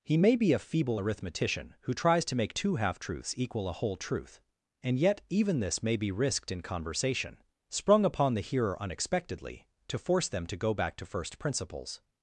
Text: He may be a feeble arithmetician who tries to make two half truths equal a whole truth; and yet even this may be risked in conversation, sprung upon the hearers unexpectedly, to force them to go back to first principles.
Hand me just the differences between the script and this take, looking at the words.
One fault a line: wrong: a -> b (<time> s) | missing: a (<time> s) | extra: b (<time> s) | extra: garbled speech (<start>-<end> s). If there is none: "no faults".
wrong: hearers -> hearer (8.4 s)